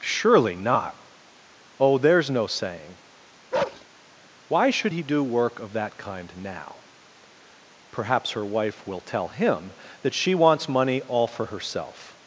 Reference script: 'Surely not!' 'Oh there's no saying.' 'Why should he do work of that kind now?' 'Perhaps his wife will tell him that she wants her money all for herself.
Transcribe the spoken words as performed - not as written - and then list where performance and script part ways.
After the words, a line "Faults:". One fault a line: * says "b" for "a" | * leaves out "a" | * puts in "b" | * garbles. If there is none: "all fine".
'Surely not!' 'Oh there's no saying.' 'Why should he do work of that kind now?' 'Perhaps her wife will tell him that she wants money all for herself.
Faults:
* says "her" for "his"
* leaves out "her"